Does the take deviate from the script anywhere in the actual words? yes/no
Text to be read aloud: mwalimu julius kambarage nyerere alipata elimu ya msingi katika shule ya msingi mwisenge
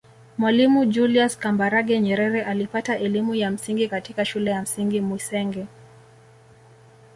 no